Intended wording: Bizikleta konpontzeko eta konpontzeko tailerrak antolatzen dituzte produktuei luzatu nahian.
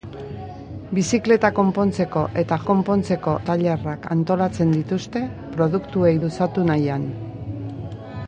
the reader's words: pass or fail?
pass